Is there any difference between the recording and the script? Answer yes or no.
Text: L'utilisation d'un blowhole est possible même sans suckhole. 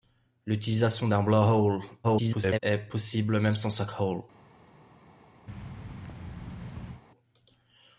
yes